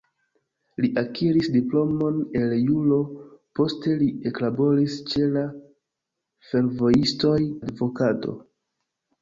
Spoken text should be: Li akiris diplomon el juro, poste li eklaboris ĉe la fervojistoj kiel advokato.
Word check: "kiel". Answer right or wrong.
wrong